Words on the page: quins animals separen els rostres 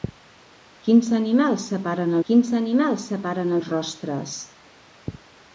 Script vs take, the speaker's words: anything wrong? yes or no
yes